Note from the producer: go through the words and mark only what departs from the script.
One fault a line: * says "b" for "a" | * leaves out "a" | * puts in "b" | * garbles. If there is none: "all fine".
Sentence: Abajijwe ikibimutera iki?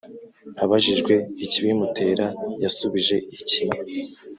* puts in "yasubije"